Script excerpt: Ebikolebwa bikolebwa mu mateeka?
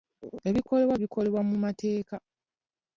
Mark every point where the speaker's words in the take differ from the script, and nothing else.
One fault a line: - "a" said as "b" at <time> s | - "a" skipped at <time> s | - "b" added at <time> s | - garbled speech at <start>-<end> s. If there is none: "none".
none